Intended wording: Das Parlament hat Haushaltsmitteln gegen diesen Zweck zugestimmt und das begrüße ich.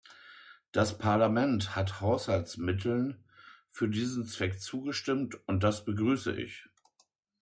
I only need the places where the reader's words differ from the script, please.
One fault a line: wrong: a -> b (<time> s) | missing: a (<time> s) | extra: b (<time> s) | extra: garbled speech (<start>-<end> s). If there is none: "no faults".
wrong: gegen -> für (3.7 s)